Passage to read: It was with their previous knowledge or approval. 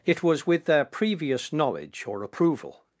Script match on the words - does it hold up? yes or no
yes